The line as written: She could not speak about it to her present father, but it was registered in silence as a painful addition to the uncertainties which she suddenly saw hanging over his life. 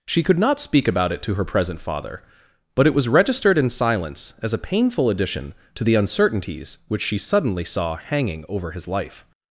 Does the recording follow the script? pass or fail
pass